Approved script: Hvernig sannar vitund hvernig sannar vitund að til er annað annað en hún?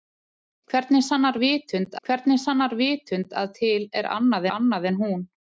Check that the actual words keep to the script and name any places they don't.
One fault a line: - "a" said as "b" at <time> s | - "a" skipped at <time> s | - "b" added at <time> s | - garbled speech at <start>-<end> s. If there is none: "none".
none